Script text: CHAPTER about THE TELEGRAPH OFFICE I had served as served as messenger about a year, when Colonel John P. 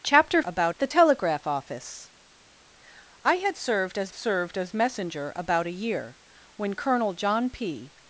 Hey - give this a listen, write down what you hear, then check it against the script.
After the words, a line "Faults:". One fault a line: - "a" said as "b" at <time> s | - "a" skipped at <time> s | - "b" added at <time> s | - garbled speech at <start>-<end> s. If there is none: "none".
CHAPTER about THE TELEGRAPH OFFICE I had served as served as messenger about a year, when Colonel John P.
Faults:
none